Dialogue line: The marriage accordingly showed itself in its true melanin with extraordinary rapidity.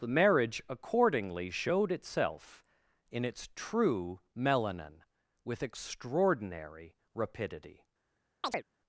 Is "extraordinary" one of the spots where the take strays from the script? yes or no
no